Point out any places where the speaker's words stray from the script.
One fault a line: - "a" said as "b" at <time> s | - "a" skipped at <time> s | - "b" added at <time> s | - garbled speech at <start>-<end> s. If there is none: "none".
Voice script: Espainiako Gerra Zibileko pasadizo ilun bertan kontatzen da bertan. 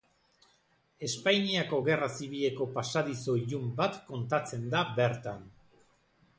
- "bertan" said as "bat" at 3.8 s